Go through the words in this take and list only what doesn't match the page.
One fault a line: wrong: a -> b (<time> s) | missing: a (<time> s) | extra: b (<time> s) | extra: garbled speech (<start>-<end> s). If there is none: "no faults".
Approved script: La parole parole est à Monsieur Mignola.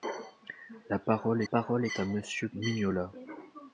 no faults